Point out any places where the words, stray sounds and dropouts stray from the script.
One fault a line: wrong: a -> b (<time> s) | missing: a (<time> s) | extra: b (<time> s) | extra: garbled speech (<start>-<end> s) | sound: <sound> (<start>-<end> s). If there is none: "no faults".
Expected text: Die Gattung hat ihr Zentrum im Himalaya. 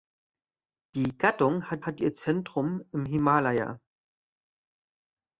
extra: hat (1.8 s)